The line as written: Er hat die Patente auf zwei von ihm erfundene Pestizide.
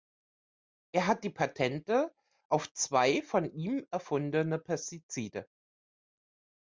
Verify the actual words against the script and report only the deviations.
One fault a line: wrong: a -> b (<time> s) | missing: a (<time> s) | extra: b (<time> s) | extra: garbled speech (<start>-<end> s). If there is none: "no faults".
no faults